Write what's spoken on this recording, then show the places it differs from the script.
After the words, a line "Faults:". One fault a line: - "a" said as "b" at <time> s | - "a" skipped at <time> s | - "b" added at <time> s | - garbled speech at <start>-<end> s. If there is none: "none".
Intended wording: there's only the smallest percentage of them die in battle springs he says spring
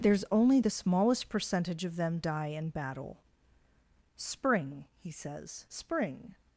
there's only the smallest percentage of them die in battle spring he says spring
Faults:
- "springs" said as "spring" at 4.2 s